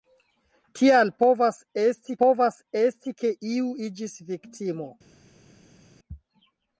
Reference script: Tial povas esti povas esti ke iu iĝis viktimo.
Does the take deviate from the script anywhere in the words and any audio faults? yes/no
no